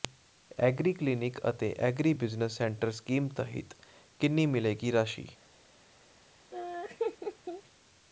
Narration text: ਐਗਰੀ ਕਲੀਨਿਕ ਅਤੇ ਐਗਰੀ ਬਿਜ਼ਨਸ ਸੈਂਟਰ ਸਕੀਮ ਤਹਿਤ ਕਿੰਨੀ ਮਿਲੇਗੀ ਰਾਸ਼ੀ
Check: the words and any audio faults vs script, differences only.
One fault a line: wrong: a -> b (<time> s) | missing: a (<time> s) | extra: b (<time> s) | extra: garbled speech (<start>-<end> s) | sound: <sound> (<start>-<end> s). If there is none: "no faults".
sound: laugh (6.5-7.6 s)